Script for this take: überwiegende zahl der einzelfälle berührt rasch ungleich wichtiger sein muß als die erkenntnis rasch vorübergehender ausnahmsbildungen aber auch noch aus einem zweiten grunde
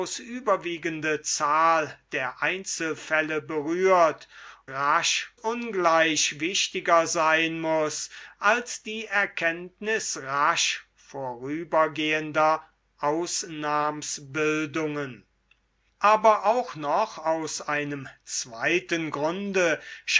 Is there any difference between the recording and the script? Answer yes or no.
no